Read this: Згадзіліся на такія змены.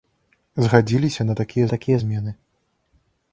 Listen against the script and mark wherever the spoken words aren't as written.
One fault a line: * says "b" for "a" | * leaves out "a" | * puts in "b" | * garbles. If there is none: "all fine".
* puts in "такія"